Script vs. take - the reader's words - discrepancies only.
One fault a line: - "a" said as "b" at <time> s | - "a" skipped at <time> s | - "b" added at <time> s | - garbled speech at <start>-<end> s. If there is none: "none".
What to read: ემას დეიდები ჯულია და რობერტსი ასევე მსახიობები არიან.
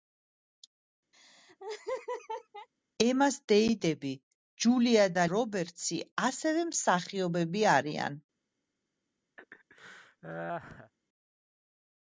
none